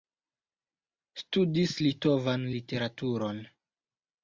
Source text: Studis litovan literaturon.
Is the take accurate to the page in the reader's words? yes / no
yes